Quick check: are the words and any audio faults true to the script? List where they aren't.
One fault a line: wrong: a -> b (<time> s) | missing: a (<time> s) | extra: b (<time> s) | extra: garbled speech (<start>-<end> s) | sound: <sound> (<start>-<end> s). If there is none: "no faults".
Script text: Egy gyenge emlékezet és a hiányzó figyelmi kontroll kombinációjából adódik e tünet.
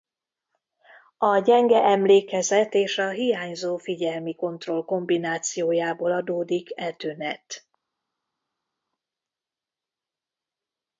wrong: Egy -> A (1.2 s)